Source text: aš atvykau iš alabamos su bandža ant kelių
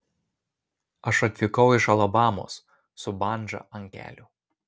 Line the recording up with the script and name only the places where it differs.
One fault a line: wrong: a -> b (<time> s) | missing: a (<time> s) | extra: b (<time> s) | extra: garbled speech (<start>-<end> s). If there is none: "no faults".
no faults